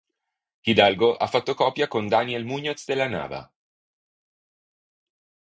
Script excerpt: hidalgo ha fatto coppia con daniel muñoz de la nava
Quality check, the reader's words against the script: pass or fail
pass